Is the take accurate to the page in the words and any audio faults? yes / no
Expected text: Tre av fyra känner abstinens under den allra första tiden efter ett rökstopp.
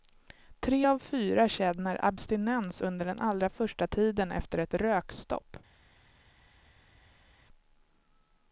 yes